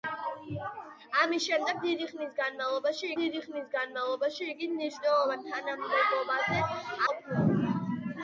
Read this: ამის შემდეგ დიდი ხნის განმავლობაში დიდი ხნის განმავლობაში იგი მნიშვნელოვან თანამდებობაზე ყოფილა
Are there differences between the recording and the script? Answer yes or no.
no